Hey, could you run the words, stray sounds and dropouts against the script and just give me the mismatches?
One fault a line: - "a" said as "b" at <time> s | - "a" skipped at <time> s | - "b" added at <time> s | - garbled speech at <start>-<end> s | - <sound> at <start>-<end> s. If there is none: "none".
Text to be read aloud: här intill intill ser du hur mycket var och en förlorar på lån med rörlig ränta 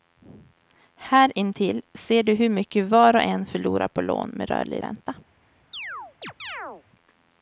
- "intill" skipped at 1.8 s
- chirp at 5.7-6.8 s